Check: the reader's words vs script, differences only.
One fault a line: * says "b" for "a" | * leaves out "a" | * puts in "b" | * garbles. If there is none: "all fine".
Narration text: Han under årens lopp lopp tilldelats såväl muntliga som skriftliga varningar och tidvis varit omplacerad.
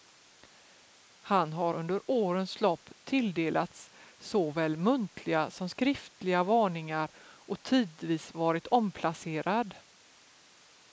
* puts in "har"
* leaves out "lopp"